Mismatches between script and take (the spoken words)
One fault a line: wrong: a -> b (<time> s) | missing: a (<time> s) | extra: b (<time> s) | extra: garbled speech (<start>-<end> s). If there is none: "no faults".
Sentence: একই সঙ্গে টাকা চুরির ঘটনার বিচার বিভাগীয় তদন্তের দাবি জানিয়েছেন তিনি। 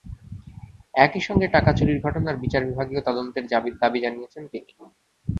no faults